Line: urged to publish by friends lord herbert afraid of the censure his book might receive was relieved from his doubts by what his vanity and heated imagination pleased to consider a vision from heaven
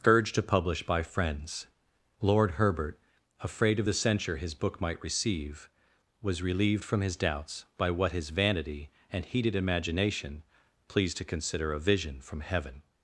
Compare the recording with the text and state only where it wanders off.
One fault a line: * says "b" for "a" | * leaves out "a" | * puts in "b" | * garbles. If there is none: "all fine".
all fine